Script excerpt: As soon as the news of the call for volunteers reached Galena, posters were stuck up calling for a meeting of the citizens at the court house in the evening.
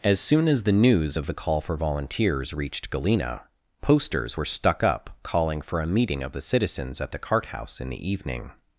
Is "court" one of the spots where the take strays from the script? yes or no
yes